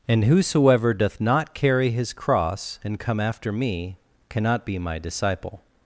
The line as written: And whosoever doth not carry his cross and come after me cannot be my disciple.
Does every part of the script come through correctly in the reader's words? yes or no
yes